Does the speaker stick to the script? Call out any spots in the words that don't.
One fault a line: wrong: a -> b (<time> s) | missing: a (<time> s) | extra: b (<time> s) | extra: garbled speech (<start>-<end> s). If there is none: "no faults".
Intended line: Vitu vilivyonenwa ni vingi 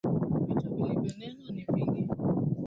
no faults